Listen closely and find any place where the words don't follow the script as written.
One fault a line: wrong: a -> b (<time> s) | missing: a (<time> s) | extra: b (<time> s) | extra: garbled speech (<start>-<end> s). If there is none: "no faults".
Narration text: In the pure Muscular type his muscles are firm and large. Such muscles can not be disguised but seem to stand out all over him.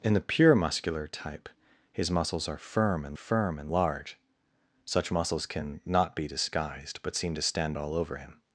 extra: firm and (3.1 s)
missing: out (7.8 s)